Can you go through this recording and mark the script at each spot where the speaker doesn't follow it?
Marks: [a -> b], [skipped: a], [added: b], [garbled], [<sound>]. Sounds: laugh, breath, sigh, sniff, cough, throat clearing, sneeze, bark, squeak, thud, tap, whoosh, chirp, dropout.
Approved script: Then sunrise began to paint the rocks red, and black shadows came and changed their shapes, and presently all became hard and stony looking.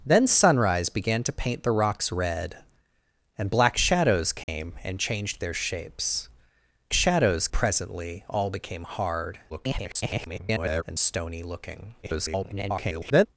Then sunrise began to paint the rocks red, and black shadows came [dropout] and changed their shapes, [and -> shadows] presently all became hard [garbled] and stony looking. [garbled]